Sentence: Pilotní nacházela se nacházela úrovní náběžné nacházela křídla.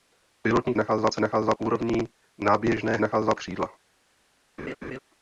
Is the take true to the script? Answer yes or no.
yes